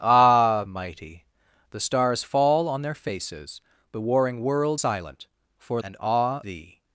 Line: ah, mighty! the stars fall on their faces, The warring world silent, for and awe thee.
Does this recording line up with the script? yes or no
yes